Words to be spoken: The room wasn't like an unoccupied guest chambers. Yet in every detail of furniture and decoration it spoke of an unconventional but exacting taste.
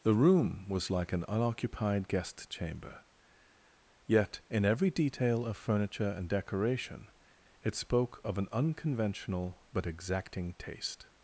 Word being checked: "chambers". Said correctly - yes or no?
no